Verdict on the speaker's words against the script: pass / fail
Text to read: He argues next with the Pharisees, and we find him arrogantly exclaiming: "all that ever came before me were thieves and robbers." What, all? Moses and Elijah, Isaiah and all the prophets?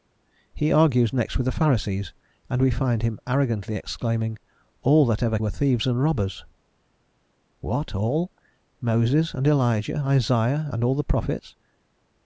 fail